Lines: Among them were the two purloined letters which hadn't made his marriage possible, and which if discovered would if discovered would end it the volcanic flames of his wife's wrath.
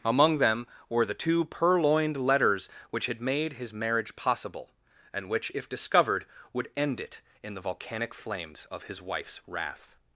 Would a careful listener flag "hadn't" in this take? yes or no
yes